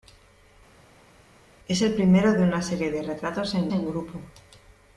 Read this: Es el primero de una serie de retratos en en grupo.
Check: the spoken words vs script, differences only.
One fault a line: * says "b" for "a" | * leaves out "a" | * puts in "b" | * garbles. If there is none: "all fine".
all fine